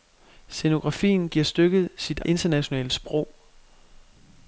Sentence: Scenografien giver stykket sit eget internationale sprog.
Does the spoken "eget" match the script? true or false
false